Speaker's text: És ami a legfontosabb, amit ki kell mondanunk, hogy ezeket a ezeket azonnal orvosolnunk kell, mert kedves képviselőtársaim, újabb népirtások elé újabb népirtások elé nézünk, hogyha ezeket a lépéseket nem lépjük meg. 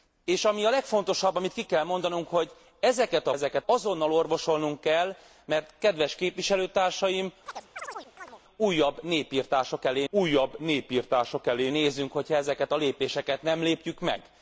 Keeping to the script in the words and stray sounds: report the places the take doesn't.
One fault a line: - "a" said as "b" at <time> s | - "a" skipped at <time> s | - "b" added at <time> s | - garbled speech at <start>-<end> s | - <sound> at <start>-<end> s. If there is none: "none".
- chirp at 7.5-8.4 s